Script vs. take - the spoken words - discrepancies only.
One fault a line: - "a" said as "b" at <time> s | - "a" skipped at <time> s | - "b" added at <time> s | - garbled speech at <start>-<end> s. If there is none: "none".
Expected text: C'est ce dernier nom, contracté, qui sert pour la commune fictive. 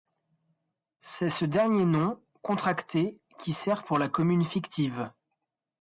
none